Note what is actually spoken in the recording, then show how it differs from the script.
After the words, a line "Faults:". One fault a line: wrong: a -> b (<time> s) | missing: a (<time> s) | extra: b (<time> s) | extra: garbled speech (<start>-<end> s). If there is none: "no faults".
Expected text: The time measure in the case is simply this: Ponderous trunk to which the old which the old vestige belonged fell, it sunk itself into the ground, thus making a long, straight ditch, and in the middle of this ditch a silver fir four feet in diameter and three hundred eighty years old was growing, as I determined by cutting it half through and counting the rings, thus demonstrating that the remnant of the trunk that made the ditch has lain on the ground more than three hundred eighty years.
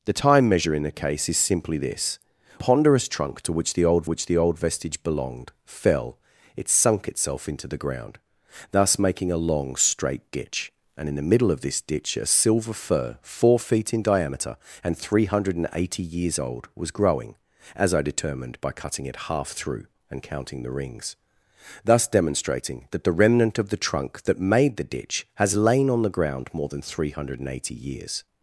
The time measure in the case is simply this: Ponderous trunk to which the old which the old vestige belonged fell, it sunk itself into the ground, thus making a long, straight ditch, and in the middle of this ditch a silver fir four feet in diameter and three hundred eighty years old was growing, as I determined by cutting it half through and counting the rings, thus demonstrating that the remnant of the trunk that made the ditch has lain on the ground more than three hundred eighty years.
Faults:
no faults